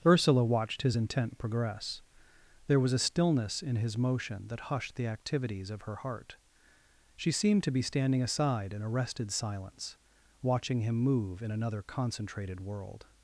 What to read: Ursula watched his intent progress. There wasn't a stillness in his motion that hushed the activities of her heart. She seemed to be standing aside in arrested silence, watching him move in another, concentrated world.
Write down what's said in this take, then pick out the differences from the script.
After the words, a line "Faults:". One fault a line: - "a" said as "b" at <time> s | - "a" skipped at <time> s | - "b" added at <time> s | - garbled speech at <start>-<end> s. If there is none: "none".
Ursula watched his intent progress. There was a stillness in his motion that hushed the activities of her heart. She seemed to be standing aside in arrested silence, watching him move in another, concentrated world.
Faults:
- "wasn't" said as "was" at 2.8 s